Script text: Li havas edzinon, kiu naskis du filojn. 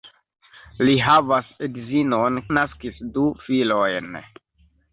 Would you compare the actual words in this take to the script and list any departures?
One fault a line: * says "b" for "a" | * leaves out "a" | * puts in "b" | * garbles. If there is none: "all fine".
* leaves out "kiu"